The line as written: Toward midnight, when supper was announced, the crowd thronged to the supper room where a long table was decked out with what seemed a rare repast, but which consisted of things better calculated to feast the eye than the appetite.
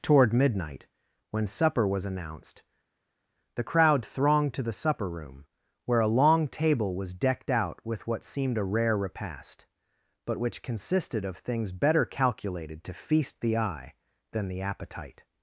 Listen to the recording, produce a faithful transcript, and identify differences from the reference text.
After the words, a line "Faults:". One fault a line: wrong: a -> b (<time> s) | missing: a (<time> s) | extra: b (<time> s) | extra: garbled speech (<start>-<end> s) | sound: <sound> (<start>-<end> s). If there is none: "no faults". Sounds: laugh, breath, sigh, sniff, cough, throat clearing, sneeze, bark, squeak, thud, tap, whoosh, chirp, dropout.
Toward midnight, when supper was announced, the crowd thronged to the supper room where a long table was decked out with what seemed a rare repast, but which consisted of things better calculated to feast the eye than the appetite.
Faults:
no faults